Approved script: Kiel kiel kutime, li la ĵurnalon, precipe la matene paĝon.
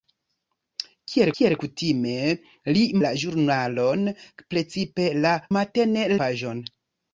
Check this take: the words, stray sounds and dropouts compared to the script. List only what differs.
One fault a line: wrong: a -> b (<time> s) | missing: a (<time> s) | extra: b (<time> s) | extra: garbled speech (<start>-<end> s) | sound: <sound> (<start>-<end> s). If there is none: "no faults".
no faults